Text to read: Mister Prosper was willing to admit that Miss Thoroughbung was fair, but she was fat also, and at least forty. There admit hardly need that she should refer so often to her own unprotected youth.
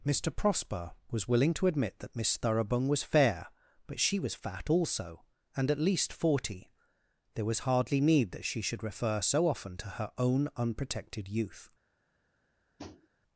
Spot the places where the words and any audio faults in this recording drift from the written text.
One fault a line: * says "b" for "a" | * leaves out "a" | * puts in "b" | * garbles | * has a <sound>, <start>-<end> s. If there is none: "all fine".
* says "was" for "admit"
* has a tap, 12.8-13.1 s